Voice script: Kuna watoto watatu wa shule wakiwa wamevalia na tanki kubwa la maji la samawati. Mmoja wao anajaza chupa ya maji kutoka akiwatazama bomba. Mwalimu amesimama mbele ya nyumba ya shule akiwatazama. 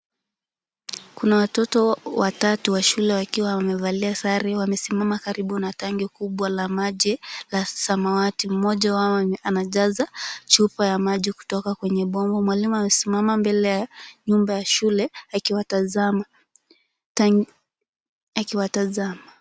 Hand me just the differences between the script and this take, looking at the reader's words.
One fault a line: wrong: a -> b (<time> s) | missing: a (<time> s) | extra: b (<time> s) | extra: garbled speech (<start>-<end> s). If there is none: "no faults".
extra: sare wamesimama karibu (4.1 s)
wrong: akiwatazama -> kwenye (11.7 s)